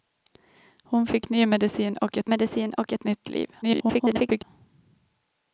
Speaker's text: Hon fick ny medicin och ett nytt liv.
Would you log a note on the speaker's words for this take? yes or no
yes